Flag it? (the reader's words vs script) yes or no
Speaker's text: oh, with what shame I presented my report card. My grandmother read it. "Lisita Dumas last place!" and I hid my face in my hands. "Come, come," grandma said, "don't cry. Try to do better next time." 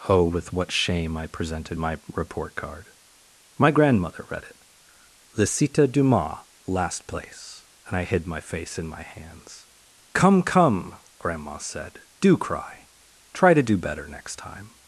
yes